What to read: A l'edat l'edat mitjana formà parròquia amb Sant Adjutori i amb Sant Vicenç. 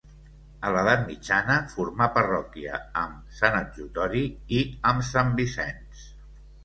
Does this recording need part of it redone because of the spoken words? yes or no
yes